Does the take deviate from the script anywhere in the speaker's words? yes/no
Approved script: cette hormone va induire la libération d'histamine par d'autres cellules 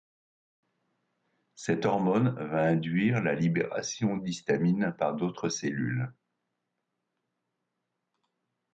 no